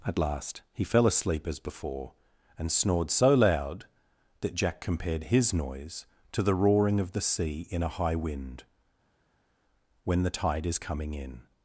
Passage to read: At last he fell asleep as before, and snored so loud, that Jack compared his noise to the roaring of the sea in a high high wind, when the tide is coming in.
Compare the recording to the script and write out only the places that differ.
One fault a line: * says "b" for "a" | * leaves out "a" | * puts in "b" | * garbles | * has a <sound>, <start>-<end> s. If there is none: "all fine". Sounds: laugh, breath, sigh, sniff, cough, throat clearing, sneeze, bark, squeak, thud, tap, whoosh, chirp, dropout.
* leaves out "high"